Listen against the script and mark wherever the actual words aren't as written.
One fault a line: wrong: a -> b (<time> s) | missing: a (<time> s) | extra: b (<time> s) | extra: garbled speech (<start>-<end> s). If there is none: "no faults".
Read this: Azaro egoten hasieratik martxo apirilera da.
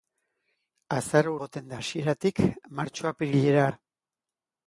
no faults